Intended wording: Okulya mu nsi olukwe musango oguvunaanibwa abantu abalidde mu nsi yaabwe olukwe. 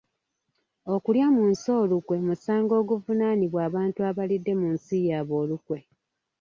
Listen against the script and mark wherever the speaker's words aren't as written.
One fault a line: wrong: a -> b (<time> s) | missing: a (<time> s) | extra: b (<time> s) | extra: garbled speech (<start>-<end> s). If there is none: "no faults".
no faults